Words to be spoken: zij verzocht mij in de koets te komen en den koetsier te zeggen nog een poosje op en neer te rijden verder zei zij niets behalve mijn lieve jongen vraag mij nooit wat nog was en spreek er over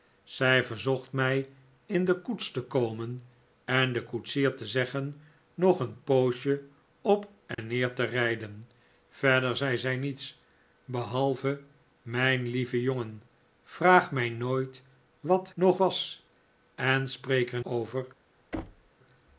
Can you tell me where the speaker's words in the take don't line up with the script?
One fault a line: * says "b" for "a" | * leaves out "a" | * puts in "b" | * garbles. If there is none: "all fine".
all fine